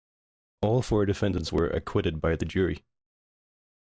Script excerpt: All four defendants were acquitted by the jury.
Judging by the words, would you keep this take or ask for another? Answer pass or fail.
pass